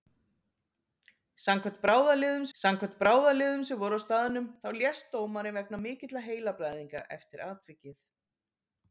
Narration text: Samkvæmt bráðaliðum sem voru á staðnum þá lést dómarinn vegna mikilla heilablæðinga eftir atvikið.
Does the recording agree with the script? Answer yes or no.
no